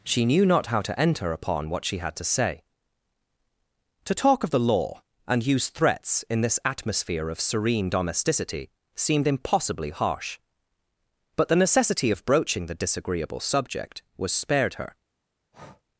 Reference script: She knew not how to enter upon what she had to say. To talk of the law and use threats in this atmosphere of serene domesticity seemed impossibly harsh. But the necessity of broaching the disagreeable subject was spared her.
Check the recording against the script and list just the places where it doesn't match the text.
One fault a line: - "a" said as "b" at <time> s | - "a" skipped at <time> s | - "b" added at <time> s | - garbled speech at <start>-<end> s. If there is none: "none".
none